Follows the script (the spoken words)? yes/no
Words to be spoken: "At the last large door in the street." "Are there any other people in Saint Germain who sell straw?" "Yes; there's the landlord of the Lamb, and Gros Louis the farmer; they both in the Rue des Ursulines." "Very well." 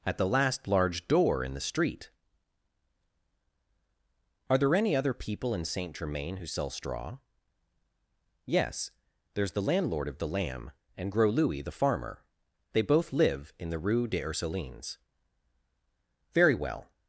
no